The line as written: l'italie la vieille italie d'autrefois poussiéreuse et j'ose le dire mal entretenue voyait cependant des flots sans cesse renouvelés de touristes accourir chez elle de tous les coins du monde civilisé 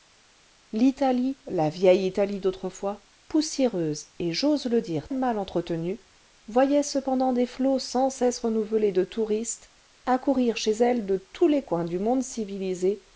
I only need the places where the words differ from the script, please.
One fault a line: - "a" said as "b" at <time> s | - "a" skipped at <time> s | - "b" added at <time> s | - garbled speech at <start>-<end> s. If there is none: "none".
none